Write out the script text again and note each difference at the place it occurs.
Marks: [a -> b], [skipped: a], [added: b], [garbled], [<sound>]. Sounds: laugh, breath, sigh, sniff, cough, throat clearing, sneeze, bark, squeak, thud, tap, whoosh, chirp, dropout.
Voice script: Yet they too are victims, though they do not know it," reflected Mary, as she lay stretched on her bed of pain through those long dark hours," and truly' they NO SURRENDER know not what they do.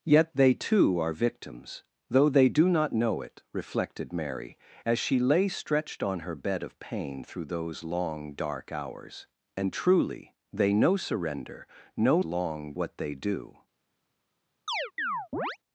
Yet they too are victims, though they do not know it," reflected Mary, as she lay stretched on her bed of pain through those long dark hours," and truly' they NO SURRENDER know [not -> long] what they do. [chirp]